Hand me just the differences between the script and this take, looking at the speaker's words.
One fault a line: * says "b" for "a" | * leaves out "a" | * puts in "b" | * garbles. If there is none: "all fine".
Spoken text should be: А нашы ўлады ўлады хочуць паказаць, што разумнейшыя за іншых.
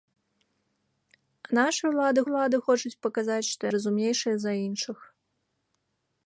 all fine